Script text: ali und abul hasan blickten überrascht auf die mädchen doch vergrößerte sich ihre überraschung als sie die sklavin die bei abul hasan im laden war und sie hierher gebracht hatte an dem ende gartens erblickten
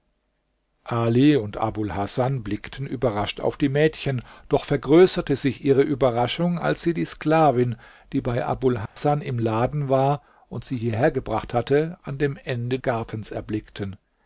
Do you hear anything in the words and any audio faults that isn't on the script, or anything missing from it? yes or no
yes